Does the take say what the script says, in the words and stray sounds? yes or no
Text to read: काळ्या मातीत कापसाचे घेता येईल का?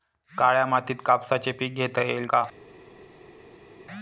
no